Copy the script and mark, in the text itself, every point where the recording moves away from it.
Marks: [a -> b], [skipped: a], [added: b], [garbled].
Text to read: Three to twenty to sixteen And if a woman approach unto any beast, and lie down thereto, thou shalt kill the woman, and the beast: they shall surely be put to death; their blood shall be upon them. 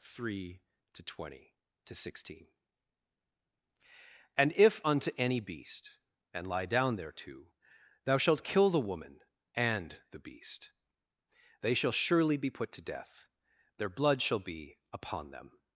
Three to twenty to sixteen And if [skipped: a woman approach] unto any beast, and lie down thereto, thou shalt kill the woman, and the beast: they shall surely be put to death; their blood shall be upon them.